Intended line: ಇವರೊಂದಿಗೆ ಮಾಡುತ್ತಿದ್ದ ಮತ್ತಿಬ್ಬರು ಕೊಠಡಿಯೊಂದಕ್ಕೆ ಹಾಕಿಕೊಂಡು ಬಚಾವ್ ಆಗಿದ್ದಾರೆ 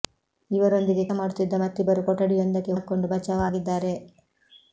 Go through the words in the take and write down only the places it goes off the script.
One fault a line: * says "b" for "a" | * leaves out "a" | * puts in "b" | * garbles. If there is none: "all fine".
all fine